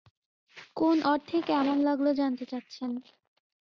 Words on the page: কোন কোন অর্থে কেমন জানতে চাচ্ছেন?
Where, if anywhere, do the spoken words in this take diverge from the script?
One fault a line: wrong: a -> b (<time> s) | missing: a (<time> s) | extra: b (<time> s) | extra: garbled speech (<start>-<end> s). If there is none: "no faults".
missing: কোন (1.0 s)
extra: লাগল (1.9 s)